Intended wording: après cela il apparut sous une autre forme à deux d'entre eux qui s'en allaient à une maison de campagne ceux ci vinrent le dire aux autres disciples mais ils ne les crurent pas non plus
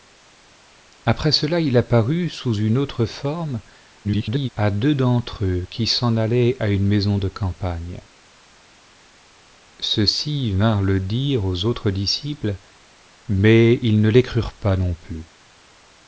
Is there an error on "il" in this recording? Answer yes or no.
no